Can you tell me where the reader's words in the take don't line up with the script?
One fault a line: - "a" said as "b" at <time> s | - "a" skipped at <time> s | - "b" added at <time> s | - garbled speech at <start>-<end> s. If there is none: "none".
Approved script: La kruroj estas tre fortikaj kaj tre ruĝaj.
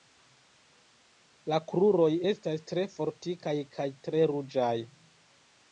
none